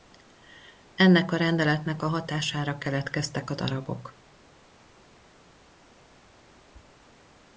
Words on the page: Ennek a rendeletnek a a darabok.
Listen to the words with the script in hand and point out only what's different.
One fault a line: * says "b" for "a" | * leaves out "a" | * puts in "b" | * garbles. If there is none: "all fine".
* puts in "hatására keletkeztek"